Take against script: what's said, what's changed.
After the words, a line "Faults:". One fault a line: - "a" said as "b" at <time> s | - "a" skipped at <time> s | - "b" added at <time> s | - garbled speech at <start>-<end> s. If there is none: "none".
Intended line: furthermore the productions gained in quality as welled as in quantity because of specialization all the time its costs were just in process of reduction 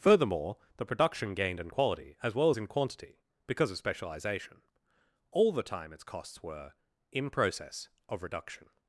furthermore the production gained in quality as well as in quantity because of specialization all the time its costs were in process of reduction
Faults:
- "productions" said as "production" at 0.8 s
- "welled" said as "well" at 2.3 s
- "just" skipped at 6.7 s